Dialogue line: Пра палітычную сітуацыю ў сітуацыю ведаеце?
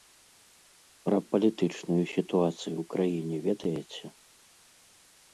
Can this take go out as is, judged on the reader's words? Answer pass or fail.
fail